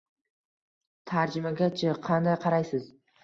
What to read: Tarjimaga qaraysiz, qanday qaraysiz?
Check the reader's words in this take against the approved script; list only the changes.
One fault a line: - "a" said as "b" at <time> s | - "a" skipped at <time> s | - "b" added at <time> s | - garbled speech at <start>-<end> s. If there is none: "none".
- "qaraysiz" said as "chi" at 1.8 s